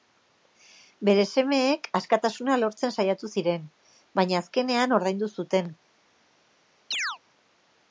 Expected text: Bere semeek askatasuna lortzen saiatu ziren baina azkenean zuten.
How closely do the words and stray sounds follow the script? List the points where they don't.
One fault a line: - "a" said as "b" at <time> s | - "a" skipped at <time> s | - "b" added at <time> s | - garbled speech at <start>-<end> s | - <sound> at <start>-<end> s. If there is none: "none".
- "ordaindu" added at 5.0 s
- chirp at 6.9-7.2 s